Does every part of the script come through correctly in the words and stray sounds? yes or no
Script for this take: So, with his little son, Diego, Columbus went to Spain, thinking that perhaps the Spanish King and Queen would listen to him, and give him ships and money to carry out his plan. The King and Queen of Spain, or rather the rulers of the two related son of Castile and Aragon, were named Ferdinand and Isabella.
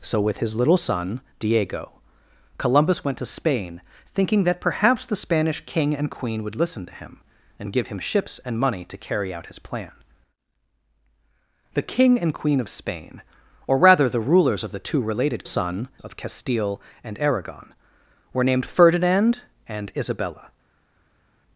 yes